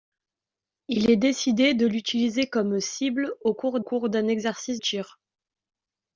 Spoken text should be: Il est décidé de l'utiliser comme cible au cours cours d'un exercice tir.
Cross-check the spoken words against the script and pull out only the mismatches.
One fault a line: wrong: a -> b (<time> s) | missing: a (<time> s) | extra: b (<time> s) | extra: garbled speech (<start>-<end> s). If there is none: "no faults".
no faults